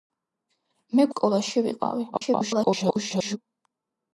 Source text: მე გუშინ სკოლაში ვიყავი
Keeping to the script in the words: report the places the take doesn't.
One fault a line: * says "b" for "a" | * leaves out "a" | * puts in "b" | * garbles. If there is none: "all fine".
* leaves out "გუშინ"
* garbles